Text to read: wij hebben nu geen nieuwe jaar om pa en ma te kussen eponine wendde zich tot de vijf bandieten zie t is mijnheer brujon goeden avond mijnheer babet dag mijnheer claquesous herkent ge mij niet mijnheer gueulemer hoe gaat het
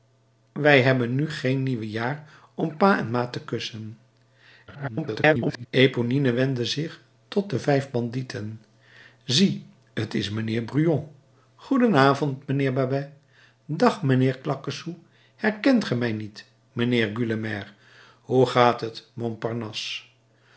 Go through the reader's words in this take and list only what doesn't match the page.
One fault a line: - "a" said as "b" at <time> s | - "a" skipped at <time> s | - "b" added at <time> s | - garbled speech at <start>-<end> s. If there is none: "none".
- garbled speech at 4.7-5.7 s